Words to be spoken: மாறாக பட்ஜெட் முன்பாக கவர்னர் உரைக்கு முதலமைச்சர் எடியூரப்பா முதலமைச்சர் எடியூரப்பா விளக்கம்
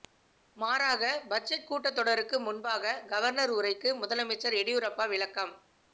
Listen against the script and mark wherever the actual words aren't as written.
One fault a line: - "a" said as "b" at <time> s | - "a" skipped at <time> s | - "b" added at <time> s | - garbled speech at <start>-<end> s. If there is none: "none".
- "கூட்டத்தொடருக்கு" added at 1.7 s
- "முதலமைச்சர் எடியூரப்பா" skipped at 5.1 s